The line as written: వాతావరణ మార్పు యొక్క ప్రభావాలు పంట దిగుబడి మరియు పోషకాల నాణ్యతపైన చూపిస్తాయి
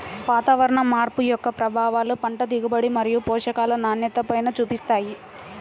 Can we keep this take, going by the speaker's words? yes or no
yes